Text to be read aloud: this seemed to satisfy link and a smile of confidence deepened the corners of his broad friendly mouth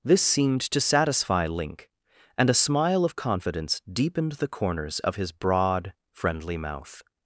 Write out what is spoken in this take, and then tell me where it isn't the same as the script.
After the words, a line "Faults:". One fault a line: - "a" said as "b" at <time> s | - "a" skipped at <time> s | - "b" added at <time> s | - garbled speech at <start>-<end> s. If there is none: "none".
this seemed to satisfy link and a smile of confidence deepened the corners of his broad friendly mouth
Faults:
none